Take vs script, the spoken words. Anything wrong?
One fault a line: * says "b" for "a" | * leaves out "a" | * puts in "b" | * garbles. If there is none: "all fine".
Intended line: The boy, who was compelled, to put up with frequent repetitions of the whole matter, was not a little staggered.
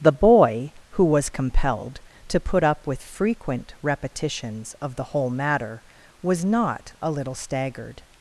all fine